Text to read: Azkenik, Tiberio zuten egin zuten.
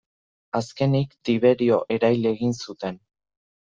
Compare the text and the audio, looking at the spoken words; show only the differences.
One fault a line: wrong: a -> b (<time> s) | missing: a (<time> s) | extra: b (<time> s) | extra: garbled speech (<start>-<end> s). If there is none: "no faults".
wrong: zuten -> erail (2.0 s)